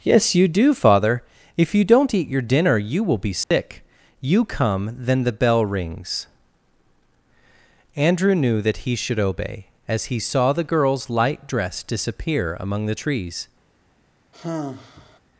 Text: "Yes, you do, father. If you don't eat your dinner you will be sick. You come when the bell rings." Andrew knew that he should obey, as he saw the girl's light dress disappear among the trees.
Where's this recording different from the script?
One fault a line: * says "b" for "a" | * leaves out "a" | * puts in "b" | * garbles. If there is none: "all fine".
* says "then" for "when"